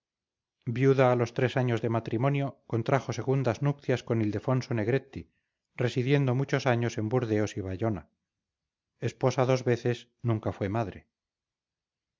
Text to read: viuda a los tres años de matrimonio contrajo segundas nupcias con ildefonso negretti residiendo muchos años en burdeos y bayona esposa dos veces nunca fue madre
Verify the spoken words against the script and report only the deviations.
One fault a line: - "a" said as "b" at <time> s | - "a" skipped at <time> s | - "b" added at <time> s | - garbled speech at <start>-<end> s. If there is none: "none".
none